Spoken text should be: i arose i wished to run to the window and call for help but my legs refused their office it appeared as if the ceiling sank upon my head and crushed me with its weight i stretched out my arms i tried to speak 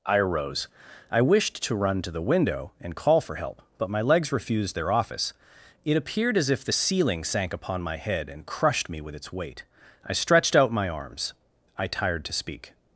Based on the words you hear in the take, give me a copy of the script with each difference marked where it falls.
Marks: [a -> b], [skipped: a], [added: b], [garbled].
i arose i wished to run to the window and call for help but my legs refused their office it appeared as if the ceiling sank upon my head and crushed me with its weight i stretched out my arms i [tried -> tired] to speak